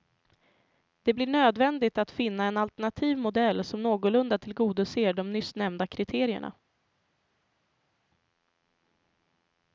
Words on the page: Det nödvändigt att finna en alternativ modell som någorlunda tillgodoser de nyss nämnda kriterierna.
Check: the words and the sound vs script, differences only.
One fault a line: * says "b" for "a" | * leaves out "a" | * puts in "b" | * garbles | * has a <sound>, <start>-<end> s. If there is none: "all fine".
* puts in "blir"